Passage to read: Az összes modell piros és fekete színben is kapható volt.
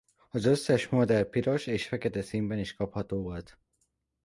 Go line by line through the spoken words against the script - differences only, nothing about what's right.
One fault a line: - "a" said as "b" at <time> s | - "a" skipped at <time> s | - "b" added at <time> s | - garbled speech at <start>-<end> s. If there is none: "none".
none